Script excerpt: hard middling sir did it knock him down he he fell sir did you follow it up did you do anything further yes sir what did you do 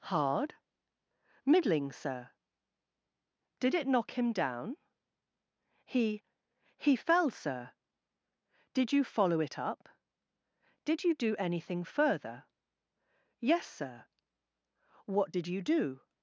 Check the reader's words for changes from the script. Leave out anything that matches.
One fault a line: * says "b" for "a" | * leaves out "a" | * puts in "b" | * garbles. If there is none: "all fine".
all fine